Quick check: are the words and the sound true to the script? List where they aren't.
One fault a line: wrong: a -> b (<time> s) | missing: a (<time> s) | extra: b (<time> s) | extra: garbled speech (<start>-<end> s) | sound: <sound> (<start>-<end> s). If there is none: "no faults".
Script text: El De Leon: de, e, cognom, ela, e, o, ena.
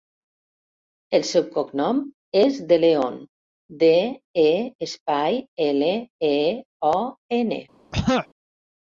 extra: seu cognom és (1.3 s)
wrong: cognom -> espai (4.9 s)
sound: throat clearing (7.9-8.3 s)